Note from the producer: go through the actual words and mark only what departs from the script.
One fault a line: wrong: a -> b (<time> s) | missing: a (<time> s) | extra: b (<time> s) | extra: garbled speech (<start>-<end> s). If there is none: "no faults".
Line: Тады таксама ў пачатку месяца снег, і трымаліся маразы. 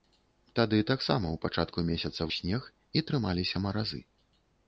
no faults